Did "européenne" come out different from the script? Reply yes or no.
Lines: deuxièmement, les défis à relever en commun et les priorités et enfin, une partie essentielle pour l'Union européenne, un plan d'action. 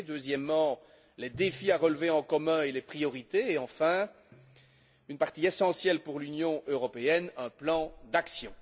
no